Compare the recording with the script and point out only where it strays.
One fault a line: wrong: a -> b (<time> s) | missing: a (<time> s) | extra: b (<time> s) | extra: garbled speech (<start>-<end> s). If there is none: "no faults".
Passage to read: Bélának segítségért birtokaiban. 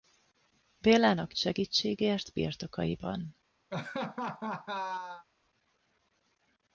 no faults